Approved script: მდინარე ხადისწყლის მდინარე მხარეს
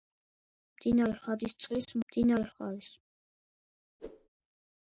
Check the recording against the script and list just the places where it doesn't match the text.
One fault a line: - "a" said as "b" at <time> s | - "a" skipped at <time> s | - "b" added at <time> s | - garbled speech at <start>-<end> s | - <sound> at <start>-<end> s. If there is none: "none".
- whoosh at 4.0-4.3 s